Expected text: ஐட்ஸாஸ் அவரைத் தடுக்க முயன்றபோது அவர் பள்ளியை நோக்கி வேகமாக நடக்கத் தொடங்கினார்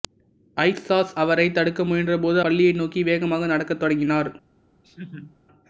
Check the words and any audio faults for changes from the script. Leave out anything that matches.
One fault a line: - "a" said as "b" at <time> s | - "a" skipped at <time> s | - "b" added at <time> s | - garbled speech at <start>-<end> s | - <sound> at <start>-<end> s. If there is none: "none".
- "அவர்" skipped at 2.4 s
- laugh at 4.8-5.4 s